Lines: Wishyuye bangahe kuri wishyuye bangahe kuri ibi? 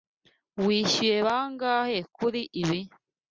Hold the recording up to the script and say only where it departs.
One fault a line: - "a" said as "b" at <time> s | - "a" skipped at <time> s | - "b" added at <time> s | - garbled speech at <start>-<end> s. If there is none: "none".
- "wishyuye bangahe kuri" skipped at 2.4 s